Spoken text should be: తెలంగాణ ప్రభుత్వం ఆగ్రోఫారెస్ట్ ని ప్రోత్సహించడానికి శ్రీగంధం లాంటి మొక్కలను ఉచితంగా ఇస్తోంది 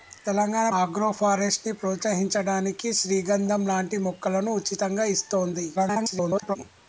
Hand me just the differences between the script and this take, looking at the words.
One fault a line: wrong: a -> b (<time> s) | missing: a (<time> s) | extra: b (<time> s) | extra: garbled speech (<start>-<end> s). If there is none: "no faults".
missing: ప్రభుత్వం (0.7 s)
extra: garbled speech (5.8-6.6 s)